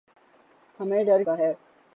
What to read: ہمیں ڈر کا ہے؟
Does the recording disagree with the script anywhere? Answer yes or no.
no